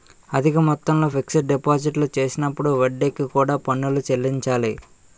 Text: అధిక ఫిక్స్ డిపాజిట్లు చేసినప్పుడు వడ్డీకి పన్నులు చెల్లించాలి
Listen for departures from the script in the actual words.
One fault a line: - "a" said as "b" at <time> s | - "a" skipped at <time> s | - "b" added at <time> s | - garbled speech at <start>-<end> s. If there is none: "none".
- "మొత్తంలో" added at 0.7 s
- "కూడా" added at 3.3 s